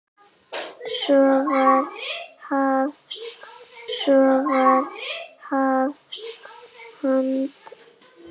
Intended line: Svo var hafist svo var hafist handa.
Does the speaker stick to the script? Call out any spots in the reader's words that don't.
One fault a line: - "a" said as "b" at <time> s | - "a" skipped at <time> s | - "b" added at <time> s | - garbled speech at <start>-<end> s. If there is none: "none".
none